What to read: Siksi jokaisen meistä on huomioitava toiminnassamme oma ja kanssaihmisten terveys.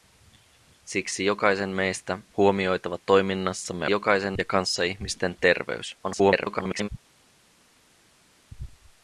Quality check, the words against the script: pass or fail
fail